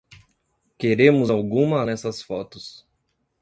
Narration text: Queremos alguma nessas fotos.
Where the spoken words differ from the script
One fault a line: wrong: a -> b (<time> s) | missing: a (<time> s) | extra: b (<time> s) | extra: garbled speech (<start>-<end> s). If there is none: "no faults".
no faults